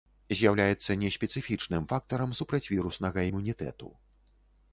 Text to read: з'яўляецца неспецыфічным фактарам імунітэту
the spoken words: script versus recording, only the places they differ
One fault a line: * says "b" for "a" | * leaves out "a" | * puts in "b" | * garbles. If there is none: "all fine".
* puts in "супрацьвіруснага"